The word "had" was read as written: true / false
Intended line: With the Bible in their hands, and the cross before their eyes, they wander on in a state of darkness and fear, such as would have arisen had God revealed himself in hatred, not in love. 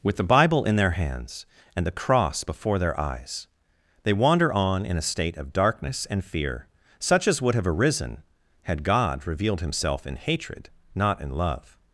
true